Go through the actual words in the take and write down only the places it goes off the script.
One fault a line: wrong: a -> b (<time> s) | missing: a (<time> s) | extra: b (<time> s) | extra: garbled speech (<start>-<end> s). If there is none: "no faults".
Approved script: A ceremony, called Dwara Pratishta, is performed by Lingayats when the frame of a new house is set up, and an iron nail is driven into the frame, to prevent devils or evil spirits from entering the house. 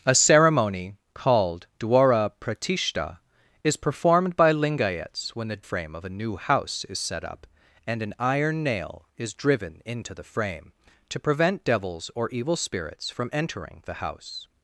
no faults